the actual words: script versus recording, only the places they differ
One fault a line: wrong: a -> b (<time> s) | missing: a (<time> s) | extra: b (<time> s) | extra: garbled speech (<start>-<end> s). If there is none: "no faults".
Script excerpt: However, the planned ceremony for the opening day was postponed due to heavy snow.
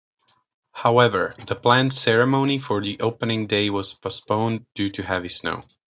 no faults